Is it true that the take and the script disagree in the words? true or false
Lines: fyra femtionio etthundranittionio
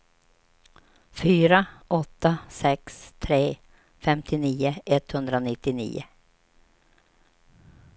true